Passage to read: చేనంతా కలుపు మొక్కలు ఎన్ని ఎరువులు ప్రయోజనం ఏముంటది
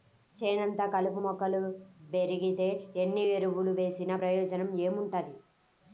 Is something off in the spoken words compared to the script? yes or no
yes